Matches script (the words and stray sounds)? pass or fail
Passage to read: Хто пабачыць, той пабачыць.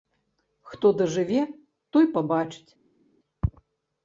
fail